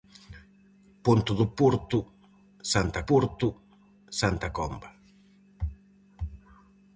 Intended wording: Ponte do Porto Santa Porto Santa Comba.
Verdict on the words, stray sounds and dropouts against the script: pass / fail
pass